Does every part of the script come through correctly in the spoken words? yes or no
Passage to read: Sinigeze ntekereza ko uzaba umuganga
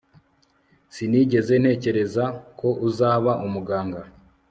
yes